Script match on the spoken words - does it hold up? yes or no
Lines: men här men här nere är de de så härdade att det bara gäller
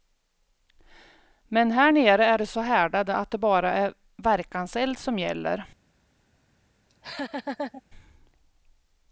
no